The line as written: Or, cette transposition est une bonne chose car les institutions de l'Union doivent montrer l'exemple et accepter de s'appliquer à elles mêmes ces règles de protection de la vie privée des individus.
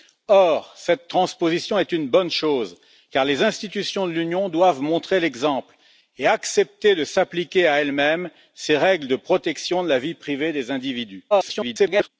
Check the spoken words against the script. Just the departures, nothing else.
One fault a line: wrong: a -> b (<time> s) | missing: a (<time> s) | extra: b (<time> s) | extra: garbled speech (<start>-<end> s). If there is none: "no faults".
extra: garbled speech (11.3-12.1 s)